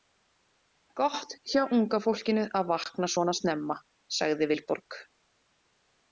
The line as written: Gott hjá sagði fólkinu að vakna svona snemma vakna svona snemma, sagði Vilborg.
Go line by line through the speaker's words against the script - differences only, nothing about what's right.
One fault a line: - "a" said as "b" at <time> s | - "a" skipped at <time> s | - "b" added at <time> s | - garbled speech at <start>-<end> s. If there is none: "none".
- "sagði" said as "unga" at 1.8 s
- "vakna svona snemma" skipped at 3.8 s